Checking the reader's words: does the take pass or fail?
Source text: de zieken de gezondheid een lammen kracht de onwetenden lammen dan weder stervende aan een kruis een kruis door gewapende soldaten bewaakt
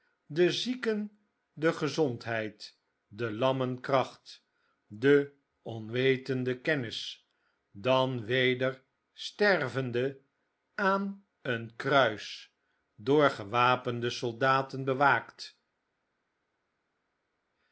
fail